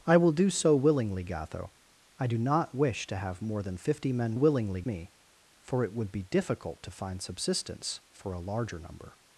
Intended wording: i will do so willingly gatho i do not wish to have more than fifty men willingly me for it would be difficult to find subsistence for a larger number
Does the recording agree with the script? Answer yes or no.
yes